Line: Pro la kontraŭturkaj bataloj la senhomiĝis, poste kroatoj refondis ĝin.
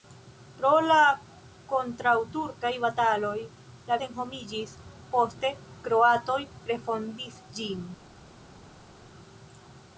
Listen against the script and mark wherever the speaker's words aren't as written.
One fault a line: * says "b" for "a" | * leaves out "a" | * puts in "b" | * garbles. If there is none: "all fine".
all fine